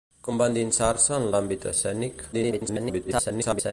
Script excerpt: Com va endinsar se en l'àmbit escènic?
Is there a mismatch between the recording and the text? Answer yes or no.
yes